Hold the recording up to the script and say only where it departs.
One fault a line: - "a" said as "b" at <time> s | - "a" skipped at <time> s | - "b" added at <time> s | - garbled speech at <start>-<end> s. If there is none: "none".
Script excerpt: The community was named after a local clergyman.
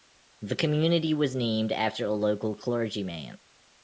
none